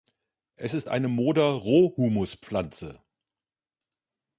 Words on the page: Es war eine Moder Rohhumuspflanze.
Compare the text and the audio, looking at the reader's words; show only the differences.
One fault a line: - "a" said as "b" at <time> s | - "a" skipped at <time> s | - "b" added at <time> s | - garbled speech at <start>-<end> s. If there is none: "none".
- "war" said as "ist" at 0.7 s